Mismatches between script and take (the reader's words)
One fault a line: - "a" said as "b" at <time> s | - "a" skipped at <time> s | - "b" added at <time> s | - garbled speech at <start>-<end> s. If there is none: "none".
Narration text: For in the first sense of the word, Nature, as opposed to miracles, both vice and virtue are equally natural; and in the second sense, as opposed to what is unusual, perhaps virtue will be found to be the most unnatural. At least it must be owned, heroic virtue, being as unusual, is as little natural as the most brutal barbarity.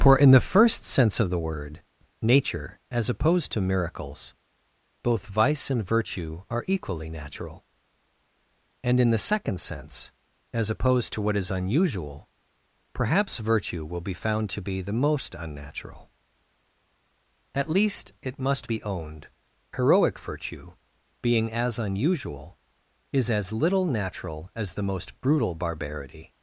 none